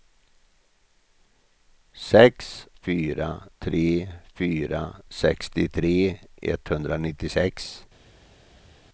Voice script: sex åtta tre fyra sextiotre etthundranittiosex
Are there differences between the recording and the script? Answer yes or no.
yes